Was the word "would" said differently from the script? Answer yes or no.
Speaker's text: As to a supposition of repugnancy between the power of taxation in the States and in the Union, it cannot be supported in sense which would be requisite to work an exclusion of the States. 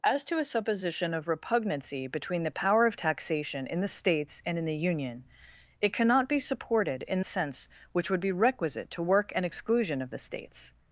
no